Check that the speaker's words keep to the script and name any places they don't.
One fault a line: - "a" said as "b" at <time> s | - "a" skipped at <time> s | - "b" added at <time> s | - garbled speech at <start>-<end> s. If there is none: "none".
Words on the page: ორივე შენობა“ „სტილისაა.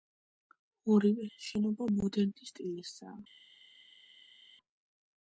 - "მოდერნის" added at 2.0 s